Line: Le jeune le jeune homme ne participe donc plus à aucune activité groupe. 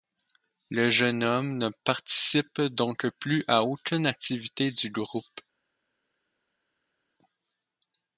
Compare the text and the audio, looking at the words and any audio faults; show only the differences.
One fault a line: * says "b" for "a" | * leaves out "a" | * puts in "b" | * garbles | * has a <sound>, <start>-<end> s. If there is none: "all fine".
* leaves out "le jeune"
* puts in "du"